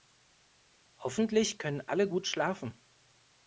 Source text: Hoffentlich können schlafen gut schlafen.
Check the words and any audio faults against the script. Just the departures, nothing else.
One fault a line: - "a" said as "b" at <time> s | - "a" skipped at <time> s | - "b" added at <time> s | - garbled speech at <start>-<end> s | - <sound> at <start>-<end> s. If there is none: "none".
- "schlafen" said as "alle" at 1.8 s